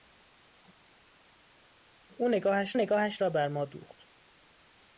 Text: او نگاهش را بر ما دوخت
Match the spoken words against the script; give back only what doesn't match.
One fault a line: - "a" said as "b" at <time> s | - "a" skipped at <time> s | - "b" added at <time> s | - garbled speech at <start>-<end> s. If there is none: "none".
- "نگاهش" added at 2.7 s